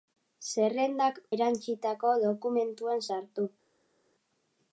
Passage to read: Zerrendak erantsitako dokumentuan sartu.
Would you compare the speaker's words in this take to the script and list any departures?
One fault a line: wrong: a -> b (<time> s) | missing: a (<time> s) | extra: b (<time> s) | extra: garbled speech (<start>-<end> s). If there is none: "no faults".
no faults